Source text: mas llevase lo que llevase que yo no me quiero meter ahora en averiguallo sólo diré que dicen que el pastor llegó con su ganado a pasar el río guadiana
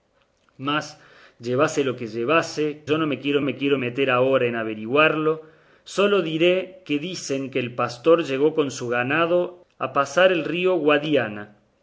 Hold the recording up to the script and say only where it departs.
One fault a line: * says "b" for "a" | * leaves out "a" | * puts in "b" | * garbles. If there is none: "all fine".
* leaves out "que"
* puts in "me quiero"